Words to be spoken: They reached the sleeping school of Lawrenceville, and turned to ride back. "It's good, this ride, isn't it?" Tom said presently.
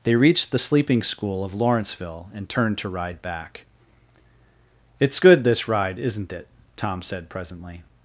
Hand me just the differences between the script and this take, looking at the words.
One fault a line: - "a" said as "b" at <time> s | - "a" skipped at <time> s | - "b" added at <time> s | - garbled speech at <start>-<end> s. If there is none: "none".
none